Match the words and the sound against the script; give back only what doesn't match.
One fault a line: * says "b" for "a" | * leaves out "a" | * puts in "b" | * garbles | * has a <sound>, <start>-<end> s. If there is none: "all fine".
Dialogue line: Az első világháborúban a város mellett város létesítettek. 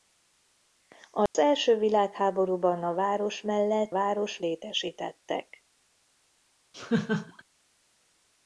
* has a dropout, 1.3-1.3 s
* has a laugh, 6.7-7.4 s